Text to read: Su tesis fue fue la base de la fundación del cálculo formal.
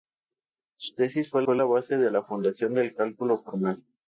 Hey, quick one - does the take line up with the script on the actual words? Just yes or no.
yes